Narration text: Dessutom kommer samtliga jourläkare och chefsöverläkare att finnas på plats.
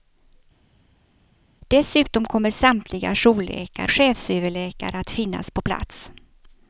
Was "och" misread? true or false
true